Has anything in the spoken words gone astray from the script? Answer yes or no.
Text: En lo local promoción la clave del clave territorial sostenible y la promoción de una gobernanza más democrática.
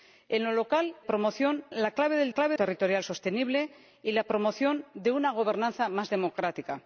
no